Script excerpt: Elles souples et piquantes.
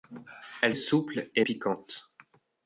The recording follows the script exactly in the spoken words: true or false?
true